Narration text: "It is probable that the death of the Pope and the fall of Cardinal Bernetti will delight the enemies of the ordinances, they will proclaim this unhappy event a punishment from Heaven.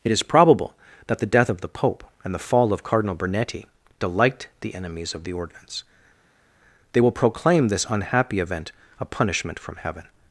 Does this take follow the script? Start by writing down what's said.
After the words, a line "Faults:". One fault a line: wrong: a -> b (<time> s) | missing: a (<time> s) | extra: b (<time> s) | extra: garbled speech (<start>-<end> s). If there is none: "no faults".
"It is probable that the death of the Pope and the fall of Cardinal Bernetti delight the enemies of the ordinance, they will proclaim this unhappy event a punishment from Heaven.
Faults:
missing: will (3.7 s)
wrong: ordinances -> ordinance (5.3 s)